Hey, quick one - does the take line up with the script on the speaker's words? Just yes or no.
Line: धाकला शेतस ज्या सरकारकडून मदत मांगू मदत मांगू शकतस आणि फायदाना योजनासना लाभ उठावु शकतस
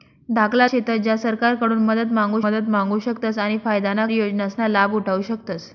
yes